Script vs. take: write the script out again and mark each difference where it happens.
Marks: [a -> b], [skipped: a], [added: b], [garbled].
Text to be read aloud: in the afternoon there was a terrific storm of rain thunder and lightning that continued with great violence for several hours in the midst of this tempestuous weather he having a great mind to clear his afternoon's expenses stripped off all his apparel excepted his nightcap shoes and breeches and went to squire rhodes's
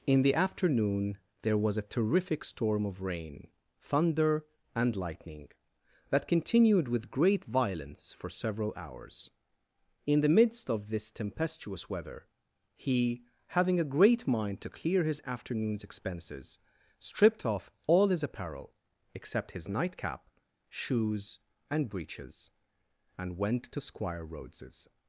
in the afternoon there was a terrific storm of rain thunder and lightning that continued with great violence for several hours in the midst of this tempestuous weather he having a great mind to clear his afternoon's expenses stripped off all his apparel [excepted -> except] his nightcap shoes and breeches and went to squire rhodes's